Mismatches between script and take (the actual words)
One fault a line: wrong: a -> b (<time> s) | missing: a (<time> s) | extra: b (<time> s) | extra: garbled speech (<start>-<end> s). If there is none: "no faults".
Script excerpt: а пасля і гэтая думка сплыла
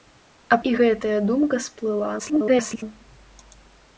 missing: пасля (0.6 s)
extra: garbled speech (2.2-2.8 s)